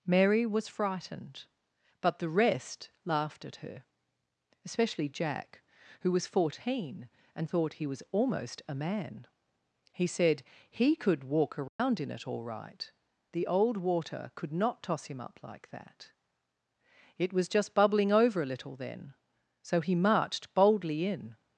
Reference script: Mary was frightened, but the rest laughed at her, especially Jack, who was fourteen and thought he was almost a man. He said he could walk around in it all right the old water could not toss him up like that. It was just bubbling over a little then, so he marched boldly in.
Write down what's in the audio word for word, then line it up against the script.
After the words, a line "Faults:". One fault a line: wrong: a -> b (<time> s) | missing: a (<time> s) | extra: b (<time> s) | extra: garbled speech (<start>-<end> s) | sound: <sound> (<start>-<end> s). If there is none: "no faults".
Mary was frightened, but the rest laughed at her, especially Jack, who was fourteen and thought he was almost a man. He said he could walk around in it all right the old water could not toss him up like that. It was just bubbling over a little then, so he marched boldly in.
Faults:
sound: dropout (11.7-11.8 s)